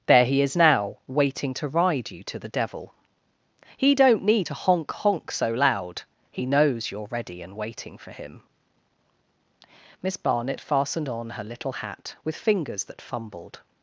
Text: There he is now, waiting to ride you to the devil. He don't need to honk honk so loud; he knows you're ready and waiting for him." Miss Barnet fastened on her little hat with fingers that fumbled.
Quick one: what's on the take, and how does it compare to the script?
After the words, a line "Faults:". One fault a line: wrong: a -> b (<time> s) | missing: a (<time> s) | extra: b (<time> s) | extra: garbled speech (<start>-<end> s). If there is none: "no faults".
There he is now, waiting to ride you to the devil. He don't need to honk honk so loud; he knows you're ready and waiting for him." Miss Barnet fastened on her little hat with fingers that fumbled.
Faults:
no faults